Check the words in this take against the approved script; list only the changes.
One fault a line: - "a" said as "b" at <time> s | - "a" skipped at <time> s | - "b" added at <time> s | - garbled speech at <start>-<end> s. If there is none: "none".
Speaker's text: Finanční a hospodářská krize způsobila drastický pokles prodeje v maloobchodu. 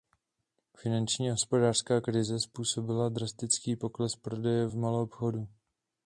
none